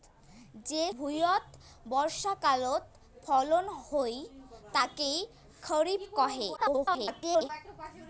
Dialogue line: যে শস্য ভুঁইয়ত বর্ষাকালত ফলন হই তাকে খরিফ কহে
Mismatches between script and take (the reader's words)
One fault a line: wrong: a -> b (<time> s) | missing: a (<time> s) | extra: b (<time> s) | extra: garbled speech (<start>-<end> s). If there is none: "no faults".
missing: শস্য (0.8 s)
extra: garbled speech (6.6-7.5 s)